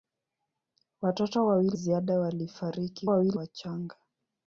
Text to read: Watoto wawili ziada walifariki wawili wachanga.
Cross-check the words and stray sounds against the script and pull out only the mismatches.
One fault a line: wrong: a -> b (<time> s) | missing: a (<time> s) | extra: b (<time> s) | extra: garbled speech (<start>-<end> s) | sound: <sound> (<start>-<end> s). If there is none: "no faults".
no faults